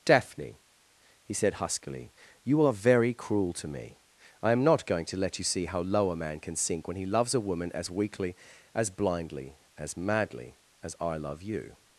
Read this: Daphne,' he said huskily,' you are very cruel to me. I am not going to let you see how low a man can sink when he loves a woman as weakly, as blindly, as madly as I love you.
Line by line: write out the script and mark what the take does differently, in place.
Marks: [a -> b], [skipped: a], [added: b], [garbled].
Daphne,' he said huskily,' you are very cruel to me. I am not going to let you see how low a man can sink when he loves a woman as weakly, as blindly, as madly as I love you.